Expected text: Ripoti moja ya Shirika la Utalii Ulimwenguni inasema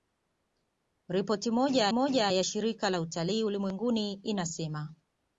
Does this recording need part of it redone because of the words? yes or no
yes